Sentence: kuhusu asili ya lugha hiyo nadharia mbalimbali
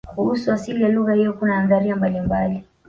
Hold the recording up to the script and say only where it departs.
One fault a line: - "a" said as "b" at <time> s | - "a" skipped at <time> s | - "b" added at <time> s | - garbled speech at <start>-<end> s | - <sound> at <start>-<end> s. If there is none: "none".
- "kuna" added at 1.3 s